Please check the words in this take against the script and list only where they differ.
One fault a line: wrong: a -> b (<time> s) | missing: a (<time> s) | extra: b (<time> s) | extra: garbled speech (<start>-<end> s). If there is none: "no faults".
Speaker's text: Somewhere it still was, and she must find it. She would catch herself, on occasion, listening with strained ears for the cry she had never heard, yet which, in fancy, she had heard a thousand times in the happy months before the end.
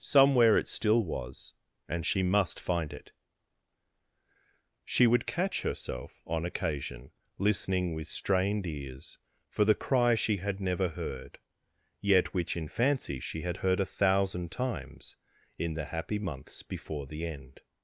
no faults